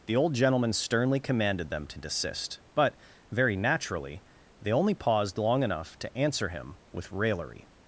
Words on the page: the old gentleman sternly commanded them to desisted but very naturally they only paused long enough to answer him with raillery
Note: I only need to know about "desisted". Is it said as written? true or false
false